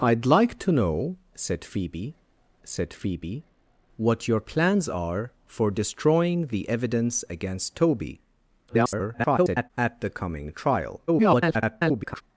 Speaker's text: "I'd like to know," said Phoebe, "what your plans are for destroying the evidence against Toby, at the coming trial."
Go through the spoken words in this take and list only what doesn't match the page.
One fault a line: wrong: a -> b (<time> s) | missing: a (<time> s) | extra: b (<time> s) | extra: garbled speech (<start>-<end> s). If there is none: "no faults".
extra: said Phoebe (2.6 s)
extra: garbled speech (8.7-9.7 s)
extra: garbled speech (11.1-12.2 s)